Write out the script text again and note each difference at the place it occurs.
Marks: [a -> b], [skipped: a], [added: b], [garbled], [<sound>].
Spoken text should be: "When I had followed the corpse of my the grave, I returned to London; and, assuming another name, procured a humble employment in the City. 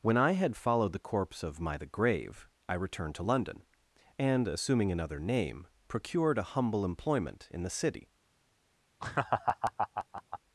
"When I had followed the corpse of my the grave, I returned to London; and, assuming another name, procured a humble employment in the City. [laugh]